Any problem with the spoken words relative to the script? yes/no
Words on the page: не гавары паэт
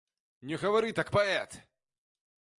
yes